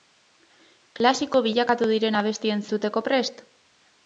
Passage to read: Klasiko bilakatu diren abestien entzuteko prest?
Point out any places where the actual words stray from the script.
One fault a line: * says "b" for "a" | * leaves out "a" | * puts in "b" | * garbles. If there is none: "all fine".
all fine